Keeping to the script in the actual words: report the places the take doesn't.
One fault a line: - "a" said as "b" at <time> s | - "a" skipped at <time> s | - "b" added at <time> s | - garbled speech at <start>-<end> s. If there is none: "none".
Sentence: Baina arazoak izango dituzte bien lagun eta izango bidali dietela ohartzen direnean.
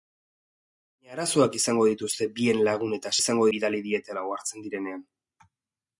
none